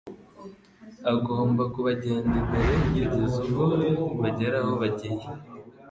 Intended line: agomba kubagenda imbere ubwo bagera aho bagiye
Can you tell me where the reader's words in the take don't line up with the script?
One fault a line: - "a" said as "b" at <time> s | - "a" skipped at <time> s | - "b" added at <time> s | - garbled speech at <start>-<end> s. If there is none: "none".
- "kugeza" added at 2.8 s